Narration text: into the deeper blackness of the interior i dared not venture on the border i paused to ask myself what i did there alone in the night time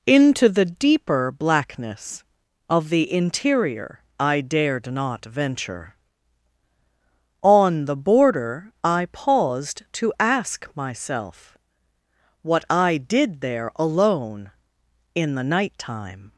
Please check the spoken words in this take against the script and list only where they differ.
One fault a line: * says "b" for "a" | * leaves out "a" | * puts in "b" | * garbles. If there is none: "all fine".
all fine